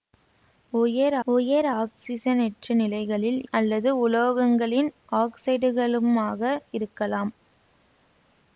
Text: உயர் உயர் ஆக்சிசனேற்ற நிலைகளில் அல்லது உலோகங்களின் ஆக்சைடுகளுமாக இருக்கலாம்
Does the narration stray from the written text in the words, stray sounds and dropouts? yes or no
no